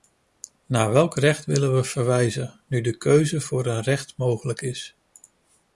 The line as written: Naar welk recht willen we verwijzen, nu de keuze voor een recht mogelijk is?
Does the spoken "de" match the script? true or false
true